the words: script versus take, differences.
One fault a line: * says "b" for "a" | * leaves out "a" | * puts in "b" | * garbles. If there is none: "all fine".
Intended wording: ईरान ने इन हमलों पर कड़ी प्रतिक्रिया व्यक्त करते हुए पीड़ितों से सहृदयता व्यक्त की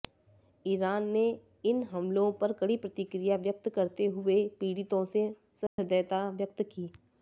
all fine